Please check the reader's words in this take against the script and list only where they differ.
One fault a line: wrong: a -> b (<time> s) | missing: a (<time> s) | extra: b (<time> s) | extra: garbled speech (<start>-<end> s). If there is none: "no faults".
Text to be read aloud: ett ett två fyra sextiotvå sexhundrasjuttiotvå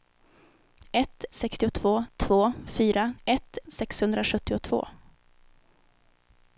wrong: ett -> sextiotvå (1.3 s)
wrong: sextiotvå -> ett (3.2 s)